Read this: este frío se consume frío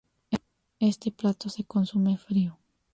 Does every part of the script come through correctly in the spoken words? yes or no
no